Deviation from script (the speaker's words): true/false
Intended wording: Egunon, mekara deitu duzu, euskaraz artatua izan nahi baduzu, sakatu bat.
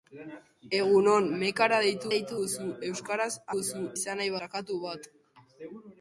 true